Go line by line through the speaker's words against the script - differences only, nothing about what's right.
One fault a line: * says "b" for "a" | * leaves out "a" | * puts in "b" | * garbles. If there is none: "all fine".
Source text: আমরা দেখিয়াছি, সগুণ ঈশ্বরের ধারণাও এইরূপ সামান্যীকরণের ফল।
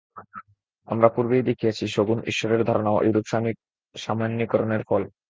* puts in "পূর্বেই"